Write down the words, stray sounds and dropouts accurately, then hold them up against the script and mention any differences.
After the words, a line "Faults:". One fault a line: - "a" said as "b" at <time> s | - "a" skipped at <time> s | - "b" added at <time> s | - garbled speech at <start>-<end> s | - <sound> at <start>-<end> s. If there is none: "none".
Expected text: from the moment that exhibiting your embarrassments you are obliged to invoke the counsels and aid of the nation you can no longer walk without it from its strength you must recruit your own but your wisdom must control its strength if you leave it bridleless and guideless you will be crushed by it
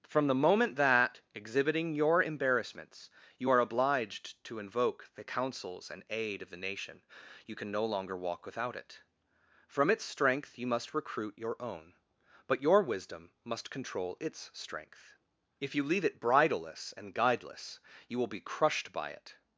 from the moment that exhibiting your embarrassments you are obliged to invoke the counsels and aid of the nation you can no longer walk without it from its strength you must recruit your own but your wisdom must control its strength if you leave it bridleless and guideless you will be crushed by it
Faults:
none